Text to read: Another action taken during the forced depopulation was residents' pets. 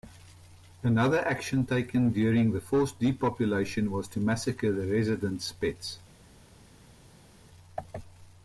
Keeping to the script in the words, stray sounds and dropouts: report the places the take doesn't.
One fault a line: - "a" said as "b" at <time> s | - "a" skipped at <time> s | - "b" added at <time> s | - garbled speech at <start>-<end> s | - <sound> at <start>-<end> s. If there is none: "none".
- "to massacre the" added at 4.1 s